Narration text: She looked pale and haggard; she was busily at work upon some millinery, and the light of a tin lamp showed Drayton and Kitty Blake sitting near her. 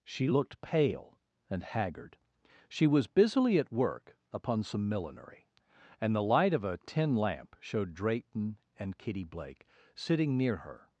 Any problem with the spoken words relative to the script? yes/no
no